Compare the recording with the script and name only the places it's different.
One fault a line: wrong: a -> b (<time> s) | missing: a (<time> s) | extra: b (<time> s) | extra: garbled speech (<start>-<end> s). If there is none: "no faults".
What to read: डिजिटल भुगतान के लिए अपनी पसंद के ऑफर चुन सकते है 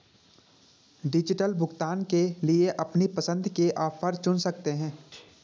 no faults